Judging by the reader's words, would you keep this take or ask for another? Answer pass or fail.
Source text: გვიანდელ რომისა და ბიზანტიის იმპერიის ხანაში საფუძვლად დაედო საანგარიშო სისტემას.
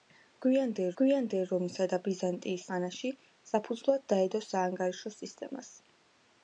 fail